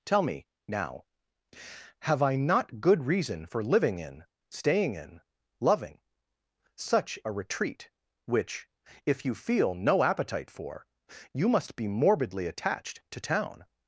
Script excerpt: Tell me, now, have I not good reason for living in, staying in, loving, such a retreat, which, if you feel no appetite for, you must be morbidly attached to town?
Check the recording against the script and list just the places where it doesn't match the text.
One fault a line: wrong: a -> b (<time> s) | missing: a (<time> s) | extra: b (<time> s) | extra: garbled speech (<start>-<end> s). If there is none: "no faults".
no faults